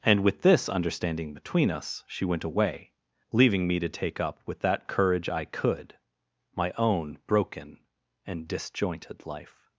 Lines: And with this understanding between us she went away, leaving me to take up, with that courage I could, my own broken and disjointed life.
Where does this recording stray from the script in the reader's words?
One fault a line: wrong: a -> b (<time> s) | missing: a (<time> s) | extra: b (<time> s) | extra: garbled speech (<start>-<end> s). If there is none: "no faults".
no faults